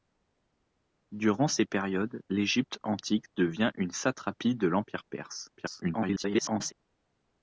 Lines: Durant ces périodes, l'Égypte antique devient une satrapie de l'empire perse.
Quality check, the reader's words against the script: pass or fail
fail